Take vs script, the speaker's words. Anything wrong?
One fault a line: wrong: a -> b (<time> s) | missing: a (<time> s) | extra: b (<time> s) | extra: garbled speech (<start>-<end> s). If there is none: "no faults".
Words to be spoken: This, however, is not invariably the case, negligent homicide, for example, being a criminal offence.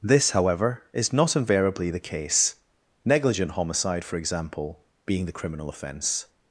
wrong: a -> the (5.3 s)